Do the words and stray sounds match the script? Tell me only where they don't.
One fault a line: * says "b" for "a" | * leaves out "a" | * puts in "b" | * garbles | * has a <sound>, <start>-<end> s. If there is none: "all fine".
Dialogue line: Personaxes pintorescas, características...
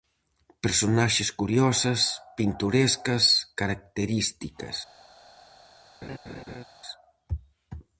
* puts in "curiosas"
* has a laugh, 6.0-6.6 s